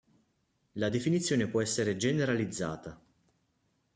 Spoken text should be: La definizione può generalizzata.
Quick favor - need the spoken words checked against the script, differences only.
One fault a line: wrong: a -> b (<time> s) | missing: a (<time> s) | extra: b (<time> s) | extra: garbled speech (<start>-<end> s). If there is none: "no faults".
extra: essere (1.6 s)